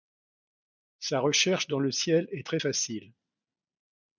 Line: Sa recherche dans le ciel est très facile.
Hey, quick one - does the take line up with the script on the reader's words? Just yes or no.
yes